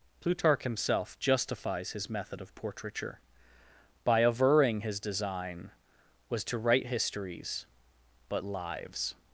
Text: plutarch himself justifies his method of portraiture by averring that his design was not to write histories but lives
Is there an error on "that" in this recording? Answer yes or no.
yes